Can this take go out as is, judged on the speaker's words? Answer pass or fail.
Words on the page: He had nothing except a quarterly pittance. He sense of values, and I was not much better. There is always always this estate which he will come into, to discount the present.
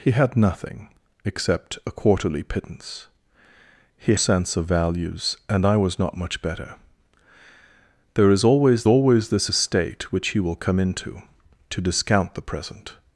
pass